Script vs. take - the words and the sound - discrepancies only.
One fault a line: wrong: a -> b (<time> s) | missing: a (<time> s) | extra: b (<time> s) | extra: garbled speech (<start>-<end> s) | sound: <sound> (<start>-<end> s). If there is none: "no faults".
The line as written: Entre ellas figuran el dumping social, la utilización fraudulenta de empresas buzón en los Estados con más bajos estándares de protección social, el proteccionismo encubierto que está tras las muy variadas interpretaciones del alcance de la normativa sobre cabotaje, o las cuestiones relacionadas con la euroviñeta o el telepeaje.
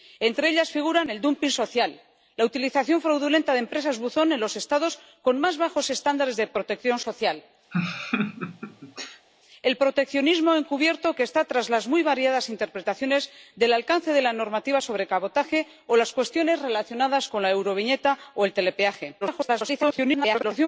sound: laugh (7.7-9.3 s)
extra: garbled speech (19.2-20.7 s)